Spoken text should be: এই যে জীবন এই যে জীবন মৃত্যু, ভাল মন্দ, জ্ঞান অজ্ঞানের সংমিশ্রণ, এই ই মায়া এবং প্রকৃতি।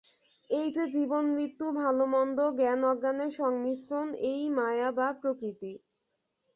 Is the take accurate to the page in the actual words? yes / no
no